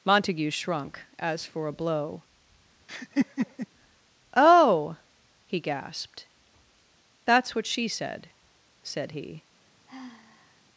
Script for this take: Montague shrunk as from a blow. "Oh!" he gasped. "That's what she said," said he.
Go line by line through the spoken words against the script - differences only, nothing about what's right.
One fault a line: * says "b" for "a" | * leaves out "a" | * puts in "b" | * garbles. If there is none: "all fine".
* says "for" for "from"